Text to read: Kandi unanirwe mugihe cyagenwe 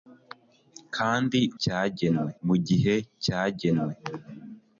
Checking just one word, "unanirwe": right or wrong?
wrong